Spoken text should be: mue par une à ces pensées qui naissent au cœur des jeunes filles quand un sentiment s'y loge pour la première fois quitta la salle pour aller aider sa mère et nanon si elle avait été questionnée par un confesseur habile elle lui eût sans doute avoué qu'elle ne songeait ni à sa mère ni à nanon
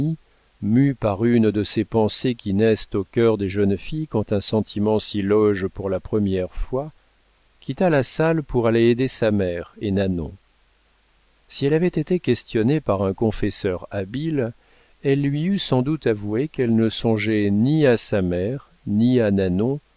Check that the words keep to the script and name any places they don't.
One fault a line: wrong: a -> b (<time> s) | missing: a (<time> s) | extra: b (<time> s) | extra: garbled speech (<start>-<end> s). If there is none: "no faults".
wrong: à -> de (1.5 s)